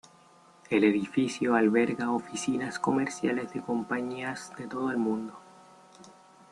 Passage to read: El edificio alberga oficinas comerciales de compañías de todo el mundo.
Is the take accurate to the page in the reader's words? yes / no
yes